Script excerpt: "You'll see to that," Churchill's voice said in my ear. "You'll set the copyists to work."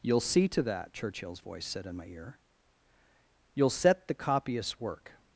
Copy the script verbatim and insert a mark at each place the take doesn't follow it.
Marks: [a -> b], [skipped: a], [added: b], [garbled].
"You'll see to that," Churchill's voice said in my ear. "You'll set the copyists [skipped: to] work."